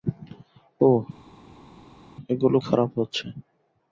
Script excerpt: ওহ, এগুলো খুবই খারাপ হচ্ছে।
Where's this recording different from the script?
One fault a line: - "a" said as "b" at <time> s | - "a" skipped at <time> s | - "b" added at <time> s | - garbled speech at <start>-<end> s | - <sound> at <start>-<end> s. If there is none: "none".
- "খুবই" skipped at 2.6 s